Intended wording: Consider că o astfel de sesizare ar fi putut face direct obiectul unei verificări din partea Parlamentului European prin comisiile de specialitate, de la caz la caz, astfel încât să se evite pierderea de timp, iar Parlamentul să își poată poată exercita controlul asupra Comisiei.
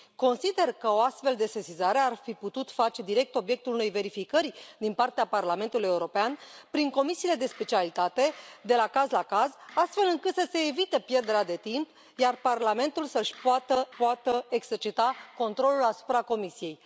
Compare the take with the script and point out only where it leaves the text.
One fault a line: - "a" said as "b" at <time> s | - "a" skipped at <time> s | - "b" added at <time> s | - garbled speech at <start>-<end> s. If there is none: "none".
none